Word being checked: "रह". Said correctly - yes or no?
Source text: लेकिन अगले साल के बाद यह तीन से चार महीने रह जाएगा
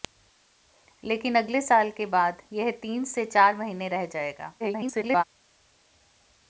yes